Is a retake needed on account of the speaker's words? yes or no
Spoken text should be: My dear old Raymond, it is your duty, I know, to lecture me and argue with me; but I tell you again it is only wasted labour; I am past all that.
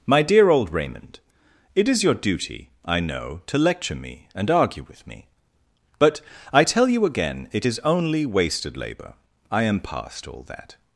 no